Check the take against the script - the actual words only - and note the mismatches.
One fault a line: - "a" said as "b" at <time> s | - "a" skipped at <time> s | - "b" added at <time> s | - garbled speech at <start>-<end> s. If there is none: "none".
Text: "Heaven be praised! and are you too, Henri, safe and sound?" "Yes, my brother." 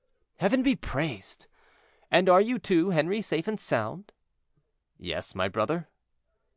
none